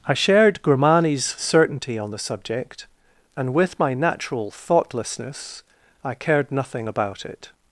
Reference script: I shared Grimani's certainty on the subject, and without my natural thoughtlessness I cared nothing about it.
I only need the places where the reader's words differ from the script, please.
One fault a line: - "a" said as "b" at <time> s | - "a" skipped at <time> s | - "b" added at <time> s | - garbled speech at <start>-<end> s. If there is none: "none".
- "without" said as "with" at 3.5 s